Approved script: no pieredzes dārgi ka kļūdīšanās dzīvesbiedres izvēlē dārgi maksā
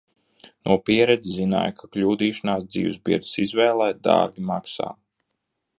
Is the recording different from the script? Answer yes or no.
yes